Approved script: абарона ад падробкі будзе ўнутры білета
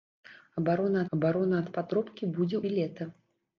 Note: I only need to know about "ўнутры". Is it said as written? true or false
false